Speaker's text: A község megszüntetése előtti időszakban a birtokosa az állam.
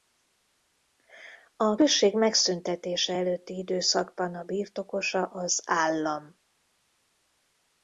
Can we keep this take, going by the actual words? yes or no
yes